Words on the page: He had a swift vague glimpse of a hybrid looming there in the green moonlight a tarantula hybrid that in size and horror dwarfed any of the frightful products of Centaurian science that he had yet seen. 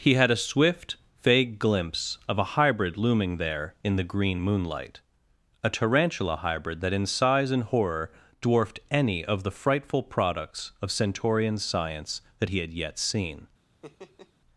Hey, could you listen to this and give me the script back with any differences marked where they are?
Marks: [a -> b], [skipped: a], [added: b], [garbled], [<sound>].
He had a swift vague glimpse of a hybrid looming there in the green moonlight a tarantula hybrid that in size and horror dwarfed any of the frightful products of Centaurian science that he had yet seen. [laugh]